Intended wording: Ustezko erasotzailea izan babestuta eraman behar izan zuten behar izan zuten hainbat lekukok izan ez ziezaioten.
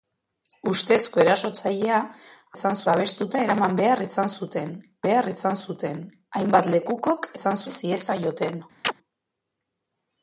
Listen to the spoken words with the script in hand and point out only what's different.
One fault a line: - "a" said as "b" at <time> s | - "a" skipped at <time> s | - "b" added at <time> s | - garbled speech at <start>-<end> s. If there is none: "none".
none